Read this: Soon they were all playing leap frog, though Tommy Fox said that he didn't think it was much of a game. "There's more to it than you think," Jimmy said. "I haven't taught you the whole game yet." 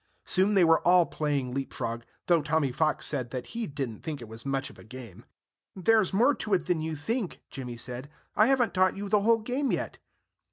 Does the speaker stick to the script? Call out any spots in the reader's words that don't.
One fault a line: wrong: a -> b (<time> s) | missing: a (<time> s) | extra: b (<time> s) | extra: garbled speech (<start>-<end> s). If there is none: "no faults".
no faults